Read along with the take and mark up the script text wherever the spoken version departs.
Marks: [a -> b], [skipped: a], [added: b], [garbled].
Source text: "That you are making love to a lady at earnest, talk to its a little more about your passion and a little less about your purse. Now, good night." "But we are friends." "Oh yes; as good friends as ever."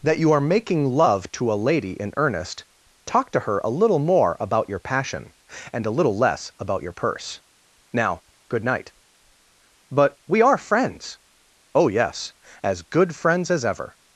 "That you are making love to a lady [at -> in] earnest, talk to [its -> her] a little more about your passion and a little less about your purse. Now, good night." "But we are friends." "Oh yes; as good friends as ever."